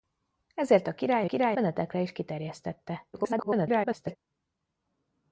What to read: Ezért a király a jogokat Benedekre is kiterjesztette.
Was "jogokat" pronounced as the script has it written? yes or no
no